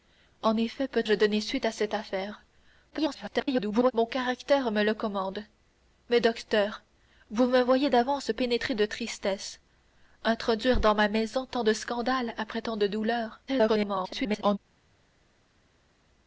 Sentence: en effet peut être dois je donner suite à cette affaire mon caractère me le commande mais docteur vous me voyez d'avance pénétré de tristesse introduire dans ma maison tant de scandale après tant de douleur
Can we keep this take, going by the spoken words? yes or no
no